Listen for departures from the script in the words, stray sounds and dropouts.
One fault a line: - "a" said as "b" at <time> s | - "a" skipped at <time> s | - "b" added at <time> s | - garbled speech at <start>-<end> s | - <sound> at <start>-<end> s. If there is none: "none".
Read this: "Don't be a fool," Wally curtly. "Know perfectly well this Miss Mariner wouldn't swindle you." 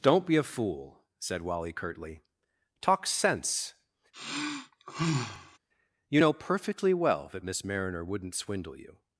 - "said" added at 1.2 s
- "Talk sense You" added at 2.8 s
- sigh at 4.1-5.6 s
- "this" said as "that" at 7.3 s